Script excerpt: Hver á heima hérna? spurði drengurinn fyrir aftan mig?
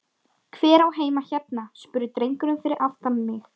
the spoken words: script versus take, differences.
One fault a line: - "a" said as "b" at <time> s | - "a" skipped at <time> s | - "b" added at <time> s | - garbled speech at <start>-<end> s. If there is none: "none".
none